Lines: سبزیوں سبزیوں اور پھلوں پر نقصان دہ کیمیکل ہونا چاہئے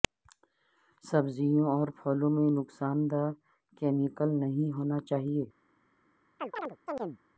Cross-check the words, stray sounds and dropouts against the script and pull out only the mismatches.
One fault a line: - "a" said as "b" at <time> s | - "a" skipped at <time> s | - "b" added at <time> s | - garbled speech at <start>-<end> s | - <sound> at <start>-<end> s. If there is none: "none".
- "سبزیوں" skipped at 1.6 s
- "پر" said as "میں" at 2.3 s
- "نہیں" added at 4.4 s
- chirp at 6.4-7.2 s